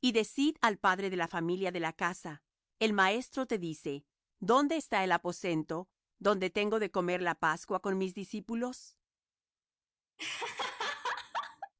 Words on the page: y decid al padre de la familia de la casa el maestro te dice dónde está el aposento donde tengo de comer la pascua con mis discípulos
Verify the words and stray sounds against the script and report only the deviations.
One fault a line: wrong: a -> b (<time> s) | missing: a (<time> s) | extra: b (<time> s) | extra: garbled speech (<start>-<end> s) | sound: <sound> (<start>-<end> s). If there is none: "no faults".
sound: laugh (10.2-11.7 s)